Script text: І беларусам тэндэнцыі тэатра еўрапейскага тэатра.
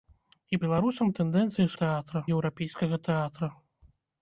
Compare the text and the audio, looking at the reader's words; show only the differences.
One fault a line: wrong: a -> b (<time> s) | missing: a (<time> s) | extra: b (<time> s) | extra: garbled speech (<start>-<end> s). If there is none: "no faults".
no faults